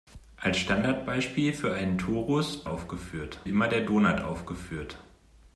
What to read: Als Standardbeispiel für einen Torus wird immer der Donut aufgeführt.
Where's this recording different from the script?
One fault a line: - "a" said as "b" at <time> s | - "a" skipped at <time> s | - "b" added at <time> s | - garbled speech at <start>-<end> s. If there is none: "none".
- "wird" said as "aufgeführt" at 2.6 s